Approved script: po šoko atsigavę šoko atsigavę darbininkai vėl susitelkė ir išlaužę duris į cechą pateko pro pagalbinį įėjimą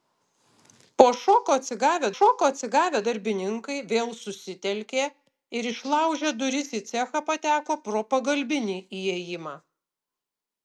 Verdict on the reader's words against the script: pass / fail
pass